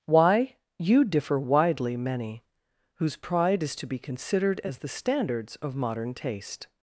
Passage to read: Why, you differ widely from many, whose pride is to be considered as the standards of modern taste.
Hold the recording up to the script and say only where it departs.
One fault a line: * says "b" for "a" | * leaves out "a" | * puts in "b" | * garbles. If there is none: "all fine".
* leaves out "from"